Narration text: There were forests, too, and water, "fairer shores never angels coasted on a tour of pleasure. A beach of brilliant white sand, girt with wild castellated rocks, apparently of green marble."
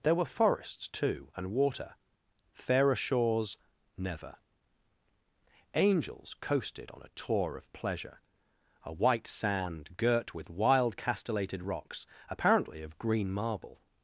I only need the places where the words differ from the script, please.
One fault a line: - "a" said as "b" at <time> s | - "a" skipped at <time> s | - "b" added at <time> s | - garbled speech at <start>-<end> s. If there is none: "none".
- "beach of brilliant" skipped at 8.9 s